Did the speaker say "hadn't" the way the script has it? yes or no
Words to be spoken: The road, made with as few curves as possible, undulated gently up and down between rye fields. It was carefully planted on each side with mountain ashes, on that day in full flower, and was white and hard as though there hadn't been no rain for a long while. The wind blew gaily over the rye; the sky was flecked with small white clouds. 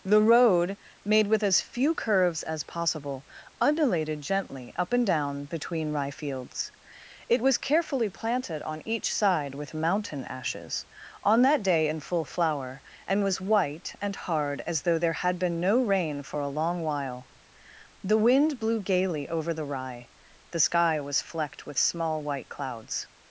no